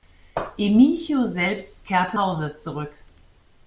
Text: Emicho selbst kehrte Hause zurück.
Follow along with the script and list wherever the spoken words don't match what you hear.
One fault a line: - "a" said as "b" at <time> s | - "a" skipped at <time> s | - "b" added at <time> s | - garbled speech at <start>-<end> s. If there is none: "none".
none